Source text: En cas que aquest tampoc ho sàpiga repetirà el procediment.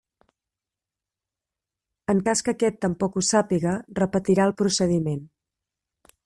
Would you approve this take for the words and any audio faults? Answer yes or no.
yes